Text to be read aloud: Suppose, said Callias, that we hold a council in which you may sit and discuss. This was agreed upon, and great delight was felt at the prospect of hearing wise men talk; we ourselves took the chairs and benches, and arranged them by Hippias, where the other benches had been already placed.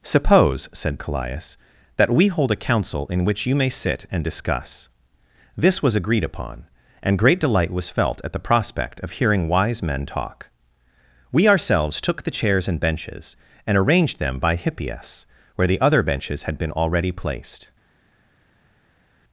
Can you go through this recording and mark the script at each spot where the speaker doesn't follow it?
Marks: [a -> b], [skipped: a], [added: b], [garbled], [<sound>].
Suppose, said Callias, that we hold a council in which you may sit and discuss. This was agreed upon, and great delight was felt at the prospect of hearing wise men talk; we ourselves took the chairs and benches, and arranged them by Hippias, where the other benches had been already placed.